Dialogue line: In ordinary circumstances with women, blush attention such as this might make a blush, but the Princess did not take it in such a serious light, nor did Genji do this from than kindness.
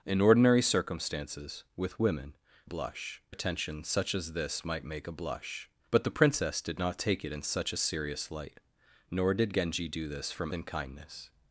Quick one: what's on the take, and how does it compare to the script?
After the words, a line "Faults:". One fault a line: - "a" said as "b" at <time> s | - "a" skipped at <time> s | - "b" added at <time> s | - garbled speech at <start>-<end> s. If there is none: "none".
In ordinary circumstances with women, blush attention such as this might make a blush, but the Princess did not take it in such a serious light, nor did Genji do this from than kindness.
Faults:
none